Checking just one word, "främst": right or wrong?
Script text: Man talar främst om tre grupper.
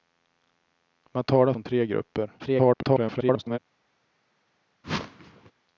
wrong